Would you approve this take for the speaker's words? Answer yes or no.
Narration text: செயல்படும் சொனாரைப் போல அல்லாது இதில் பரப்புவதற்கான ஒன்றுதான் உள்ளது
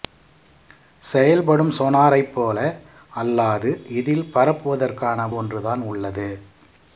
yes